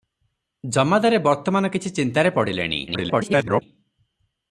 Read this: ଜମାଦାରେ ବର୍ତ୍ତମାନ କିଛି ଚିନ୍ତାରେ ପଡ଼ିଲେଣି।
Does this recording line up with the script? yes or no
no